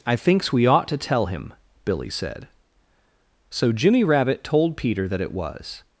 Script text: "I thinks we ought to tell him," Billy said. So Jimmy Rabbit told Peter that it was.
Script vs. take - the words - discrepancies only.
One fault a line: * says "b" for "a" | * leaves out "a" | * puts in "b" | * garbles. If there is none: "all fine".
all fine